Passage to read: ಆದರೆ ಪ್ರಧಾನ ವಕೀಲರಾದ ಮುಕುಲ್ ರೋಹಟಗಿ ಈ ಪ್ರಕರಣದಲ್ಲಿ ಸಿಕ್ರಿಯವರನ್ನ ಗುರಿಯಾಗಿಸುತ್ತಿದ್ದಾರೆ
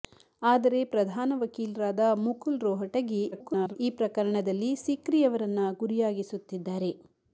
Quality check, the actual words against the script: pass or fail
fail